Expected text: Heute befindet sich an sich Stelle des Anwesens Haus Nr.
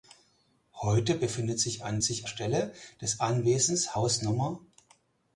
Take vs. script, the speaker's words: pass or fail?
pass